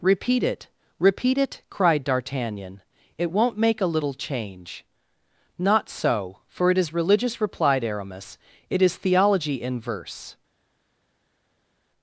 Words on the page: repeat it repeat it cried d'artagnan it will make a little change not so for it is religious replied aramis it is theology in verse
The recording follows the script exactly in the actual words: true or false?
false